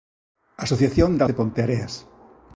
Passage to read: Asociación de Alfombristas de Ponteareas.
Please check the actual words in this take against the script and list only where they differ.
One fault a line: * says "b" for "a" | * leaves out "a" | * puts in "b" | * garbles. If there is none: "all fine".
* leaves out "Alfombristas"